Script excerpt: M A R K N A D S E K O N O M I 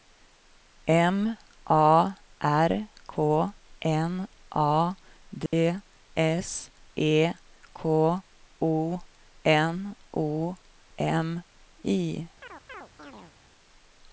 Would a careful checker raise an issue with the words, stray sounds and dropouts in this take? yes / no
yes